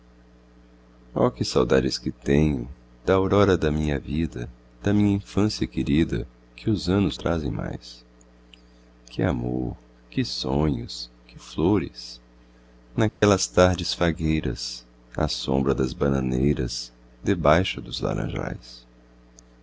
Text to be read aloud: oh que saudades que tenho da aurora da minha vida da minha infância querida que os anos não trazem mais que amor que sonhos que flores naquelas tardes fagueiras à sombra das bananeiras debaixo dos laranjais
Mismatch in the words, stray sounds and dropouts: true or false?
true